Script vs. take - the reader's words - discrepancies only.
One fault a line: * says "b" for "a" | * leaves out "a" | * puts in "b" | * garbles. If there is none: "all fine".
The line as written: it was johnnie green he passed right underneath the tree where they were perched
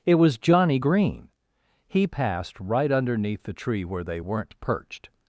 * says "weren't" for "were"